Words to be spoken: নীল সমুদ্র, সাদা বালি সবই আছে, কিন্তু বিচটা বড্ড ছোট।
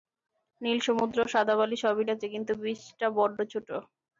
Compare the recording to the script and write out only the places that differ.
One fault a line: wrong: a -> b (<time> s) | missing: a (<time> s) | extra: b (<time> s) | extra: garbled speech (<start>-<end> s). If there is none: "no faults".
no faults